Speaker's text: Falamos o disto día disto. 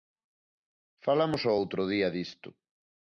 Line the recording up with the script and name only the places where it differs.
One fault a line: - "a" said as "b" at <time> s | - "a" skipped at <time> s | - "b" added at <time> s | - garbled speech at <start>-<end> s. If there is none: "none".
- "disto" said as "outro" at 1.6 s